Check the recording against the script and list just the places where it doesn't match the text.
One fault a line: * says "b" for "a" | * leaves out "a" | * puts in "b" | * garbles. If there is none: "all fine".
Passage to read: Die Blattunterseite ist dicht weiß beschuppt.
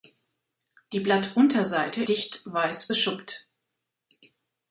* leaves out "ist"